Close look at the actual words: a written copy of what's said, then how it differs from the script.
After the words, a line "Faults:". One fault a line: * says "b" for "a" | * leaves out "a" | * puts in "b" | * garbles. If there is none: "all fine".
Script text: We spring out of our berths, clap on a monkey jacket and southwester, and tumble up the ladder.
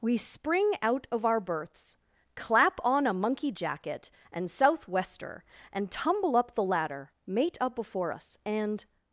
We spring out of our berths, clap on a monkey jacket and southwester, and tumble up the ladder. Mate up before us, and
Faults:
* puts in "Mate up before us and"